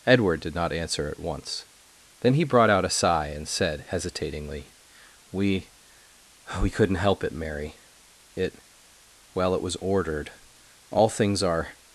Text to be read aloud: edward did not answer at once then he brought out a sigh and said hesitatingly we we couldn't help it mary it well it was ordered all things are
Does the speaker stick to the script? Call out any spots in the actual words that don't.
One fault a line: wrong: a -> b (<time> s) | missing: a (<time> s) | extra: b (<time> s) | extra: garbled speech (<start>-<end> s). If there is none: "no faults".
no faults